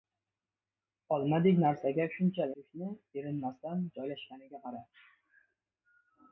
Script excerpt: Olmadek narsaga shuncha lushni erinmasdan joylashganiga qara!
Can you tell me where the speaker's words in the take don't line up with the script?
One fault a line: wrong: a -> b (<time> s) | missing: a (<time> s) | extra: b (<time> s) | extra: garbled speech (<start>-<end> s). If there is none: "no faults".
no faults